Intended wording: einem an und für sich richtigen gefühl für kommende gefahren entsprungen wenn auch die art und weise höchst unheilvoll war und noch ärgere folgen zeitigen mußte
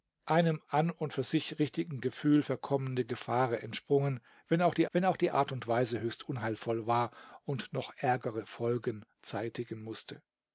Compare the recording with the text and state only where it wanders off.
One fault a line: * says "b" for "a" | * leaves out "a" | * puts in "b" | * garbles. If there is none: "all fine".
* puts in "wenn auch die"